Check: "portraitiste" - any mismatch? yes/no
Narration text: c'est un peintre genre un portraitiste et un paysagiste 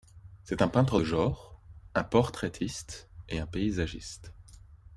no